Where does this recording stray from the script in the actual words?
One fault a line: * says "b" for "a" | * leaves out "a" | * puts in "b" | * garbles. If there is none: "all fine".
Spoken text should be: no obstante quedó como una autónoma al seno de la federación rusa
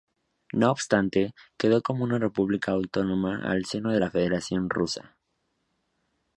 * puts in "república"